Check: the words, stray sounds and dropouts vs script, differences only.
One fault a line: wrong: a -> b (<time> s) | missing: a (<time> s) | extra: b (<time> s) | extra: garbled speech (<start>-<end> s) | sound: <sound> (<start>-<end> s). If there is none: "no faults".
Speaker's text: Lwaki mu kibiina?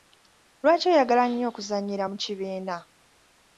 extra: oyagala nnyo okuzannyira (0.9 s)